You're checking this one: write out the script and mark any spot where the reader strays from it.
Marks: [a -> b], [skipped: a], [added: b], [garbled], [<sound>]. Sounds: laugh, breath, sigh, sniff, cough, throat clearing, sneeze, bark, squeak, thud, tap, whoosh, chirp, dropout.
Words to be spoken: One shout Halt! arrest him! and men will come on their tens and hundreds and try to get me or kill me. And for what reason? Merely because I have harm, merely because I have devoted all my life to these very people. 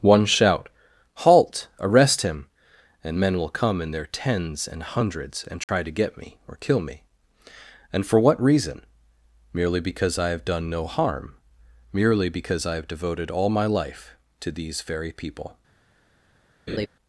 One shout Halt! arrest him! and men will come [on -> in] their tens and hundreds and try [dropout] to get me or kill me. And for what reason? Merely because I have [added: done no] harm, merely because I have devoted all my life to these very people. [laugh]